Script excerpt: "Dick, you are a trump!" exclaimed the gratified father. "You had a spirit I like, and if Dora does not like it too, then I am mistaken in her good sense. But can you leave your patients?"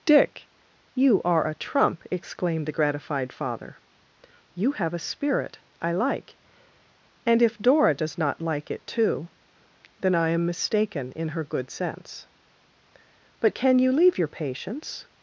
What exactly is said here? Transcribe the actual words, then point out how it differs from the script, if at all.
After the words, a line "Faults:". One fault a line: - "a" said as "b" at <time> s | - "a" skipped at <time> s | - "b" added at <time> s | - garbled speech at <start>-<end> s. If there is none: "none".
"Dick, you are a trump!" exclaimed the gratified father. "You have a spirit I like, and if Dora does not like it too, then I am mistaken in her good sense. But can you leave your patients?"
Faults:
- "had" said as "have" at 4.7 s